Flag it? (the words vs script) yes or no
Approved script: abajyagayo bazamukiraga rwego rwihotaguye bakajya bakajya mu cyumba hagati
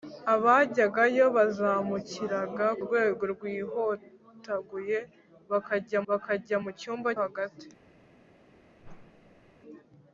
no